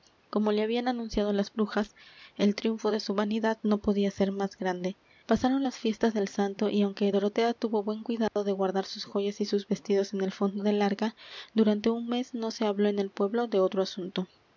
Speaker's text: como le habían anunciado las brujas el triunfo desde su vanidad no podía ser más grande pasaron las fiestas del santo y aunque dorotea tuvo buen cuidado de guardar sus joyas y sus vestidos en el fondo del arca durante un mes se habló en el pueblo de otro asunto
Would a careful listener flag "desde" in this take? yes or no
yes